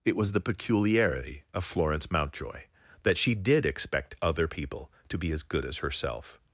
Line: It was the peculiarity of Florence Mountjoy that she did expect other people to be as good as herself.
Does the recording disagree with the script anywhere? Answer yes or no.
no